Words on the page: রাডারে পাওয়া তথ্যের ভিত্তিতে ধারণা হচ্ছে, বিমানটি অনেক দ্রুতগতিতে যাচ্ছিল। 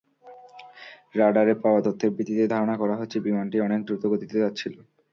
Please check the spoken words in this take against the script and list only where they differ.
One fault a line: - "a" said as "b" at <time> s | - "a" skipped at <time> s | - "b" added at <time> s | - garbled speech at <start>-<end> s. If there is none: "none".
- "করা" added at 2.8 s